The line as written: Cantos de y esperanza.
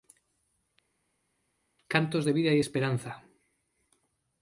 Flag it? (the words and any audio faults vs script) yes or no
yes